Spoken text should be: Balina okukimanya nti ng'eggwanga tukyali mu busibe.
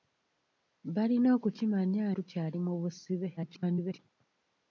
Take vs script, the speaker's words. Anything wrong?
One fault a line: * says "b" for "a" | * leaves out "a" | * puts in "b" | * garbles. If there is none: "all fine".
* leaves out "nti ng'eggwanga"
* garbles